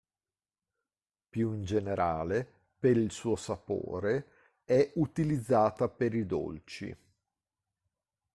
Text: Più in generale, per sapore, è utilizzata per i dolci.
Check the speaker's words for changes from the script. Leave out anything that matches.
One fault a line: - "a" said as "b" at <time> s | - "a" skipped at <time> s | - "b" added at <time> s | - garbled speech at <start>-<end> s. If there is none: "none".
- "il suo" added at 3.0 s